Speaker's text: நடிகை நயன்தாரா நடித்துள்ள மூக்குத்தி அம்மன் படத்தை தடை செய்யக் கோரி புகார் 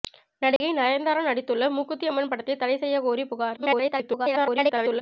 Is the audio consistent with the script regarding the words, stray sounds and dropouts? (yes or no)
no